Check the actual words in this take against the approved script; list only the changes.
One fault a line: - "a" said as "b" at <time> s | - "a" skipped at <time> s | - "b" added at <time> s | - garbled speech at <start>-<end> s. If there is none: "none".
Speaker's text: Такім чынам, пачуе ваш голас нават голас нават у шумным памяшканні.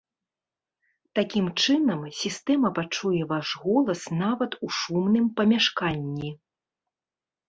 - "сістэма" added at 2.2 s
- "голас нават" skipped at 4.5 s